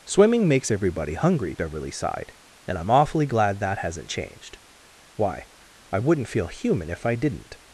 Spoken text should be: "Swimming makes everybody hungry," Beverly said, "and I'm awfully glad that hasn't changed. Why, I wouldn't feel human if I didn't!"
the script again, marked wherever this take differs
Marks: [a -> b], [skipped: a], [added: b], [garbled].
"Swimming makes everybody hungry," Beverly [said, -> sighed] "and I'm awfully glad that hasn't changed. Why, I wouldn't feel human if I didn't!"